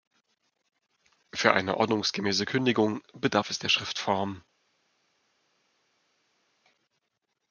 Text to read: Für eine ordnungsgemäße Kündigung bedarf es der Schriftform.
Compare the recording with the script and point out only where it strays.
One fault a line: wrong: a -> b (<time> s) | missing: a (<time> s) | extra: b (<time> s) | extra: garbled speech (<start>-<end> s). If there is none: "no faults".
no faults